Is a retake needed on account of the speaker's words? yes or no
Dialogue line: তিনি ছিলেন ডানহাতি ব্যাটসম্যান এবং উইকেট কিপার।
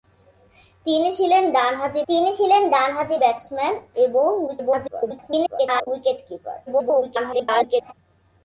yes